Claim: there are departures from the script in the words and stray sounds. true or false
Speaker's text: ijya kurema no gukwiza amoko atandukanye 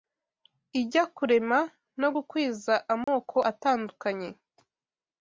true